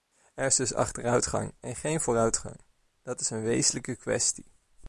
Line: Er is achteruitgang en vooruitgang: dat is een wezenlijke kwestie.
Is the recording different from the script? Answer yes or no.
yes